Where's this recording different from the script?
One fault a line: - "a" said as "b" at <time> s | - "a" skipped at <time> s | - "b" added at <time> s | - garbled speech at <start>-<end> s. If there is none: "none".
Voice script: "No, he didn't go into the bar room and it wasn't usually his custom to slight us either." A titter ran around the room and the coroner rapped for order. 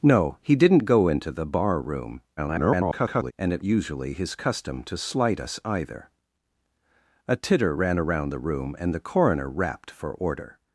- garbled speech at 2.4-3.3 s
- "wasn't" skipped at 3.6 s